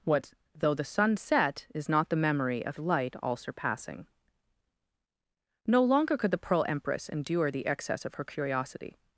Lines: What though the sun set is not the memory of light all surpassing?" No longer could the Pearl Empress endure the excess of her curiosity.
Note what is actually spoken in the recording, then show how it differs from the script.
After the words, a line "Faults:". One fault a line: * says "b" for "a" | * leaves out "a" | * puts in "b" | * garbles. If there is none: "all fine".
What though the sun set is not the memory of light all surpassing?" No longer could the Pearl Empress endure the excess of her curiosity.
Faults:
all fine